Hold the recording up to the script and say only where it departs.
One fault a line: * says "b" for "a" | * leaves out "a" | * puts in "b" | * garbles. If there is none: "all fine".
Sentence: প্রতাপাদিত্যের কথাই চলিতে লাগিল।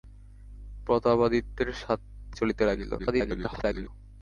* leaves out "কথাই"
* garbles